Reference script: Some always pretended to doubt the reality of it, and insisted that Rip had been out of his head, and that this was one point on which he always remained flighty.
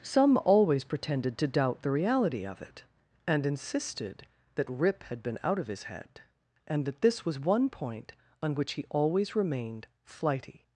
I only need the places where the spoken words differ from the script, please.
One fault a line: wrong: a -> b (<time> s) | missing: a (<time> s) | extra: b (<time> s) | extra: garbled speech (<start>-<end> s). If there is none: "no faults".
no faults